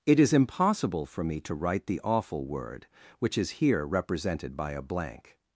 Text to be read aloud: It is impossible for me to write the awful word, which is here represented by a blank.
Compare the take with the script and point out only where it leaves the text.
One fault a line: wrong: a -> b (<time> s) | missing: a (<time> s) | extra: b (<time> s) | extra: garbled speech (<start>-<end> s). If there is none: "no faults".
no faults